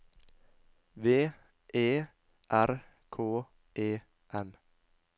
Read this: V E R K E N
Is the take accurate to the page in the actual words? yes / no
yes